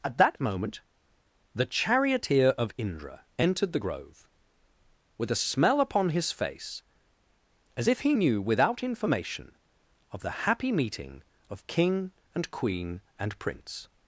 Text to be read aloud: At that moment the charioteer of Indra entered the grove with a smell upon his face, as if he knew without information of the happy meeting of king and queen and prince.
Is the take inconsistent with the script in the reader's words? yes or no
no